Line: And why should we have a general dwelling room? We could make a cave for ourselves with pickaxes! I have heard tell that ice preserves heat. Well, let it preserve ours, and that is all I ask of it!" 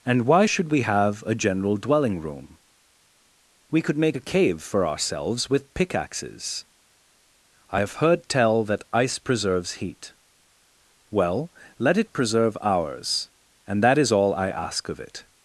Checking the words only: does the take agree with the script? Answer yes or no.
yes